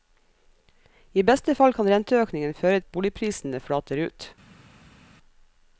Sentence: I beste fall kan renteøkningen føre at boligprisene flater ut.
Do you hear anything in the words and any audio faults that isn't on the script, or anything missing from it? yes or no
no